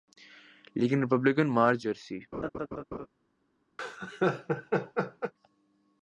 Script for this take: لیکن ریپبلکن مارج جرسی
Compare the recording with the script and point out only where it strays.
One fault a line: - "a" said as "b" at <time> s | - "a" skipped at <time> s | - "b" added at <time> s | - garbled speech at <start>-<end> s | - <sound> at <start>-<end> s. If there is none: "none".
- laugh at 2.3-3.1 s
- laugh at 3.8-5.3 s